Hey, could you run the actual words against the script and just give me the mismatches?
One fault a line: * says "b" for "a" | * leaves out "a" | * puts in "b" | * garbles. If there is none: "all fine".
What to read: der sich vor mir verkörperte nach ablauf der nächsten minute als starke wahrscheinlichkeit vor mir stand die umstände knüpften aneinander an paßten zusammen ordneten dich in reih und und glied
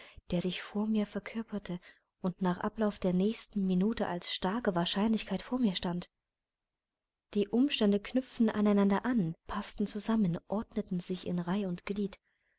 * puts in "und"
* says "sich" for "dich"
* leaves out "und"